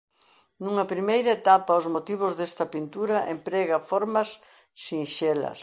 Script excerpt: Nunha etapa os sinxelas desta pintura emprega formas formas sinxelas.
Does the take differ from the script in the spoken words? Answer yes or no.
yes